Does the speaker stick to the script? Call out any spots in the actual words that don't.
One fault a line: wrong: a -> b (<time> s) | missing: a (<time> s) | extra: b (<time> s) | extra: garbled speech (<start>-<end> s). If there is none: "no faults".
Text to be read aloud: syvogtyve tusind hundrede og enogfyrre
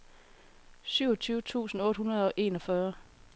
extra: otte (1.8 s)